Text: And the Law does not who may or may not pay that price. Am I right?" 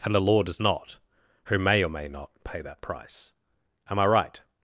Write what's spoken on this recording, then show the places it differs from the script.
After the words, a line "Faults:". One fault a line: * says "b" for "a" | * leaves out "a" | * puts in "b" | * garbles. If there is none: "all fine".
And the Law does not who may or may not pay that price. Am I right?"
Faults:
all fine